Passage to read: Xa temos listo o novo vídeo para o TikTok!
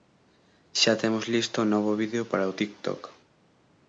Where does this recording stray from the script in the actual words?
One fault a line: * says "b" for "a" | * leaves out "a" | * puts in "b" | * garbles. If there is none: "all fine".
all fine